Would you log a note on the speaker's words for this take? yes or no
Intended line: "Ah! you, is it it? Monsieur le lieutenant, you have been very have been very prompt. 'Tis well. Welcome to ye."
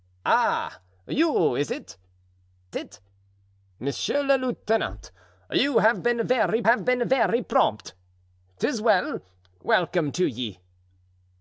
no